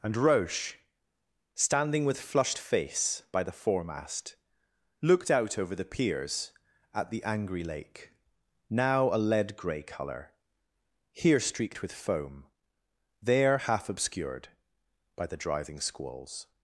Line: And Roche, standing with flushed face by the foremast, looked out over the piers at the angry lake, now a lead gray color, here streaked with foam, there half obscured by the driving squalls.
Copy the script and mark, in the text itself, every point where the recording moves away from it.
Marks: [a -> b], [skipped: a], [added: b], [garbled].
And Roche, standing with flushed face by the foremast, looked out over the piers at the angry lake, now a lead gray color, here streaked with foam, there half obscured by the driving squalls.